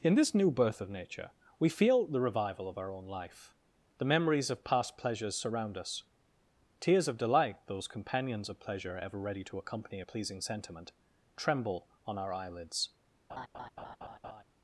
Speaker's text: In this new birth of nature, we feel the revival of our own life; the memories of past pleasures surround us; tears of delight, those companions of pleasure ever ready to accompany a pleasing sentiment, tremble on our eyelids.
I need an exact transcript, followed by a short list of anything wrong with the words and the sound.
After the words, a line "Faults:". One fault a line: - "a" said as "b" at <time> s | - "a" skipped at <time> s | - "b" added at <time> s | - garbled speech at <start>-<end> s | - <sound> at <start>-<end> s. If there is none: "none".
In this new birth of nature, we feel the revival of our own life; the memories of past pleasures surround us; tears of delight, those companions of pleasure ever ready to accompany a pleasing sentiment, tremble on our eyelids.
Faults:
- laugh at 13.3-14.4 s